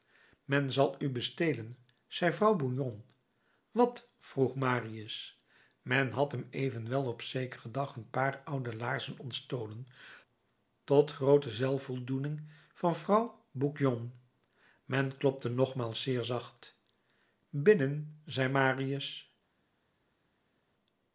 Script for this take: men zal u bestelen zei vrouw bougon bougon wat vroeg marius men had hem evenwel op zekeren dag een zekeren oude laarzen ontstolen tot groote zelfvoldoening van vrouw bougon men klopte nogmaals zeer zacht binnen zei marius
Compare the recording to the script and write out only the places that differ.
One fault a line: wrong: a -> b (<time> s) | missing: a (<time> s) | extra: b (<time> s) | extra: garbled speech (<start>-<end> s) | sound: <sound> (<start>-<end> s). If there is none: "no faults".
missing: bougon (3.0 s)
wrong: zekeren -> paar (8.1 s)